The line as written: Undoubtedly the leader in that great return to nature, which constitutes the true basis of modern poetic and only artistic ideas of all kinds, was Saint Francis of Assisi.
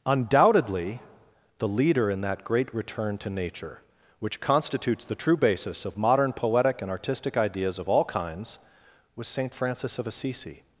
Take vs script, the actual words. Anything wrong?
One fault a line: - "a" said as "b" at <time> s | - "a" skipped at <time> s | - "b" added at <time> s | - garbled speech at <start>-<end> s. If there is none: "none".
- "only" skipped at 6.9 s